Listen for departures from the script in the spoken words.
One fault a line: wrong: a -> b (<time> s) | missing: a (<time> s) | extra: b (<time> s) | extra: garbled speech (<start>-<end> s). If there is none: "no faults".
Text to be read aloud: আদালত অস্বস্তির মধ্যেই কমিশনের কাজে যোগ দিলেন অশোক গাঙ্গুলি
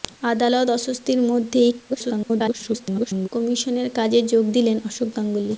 extra: garbled speech (1.9-3.3 s)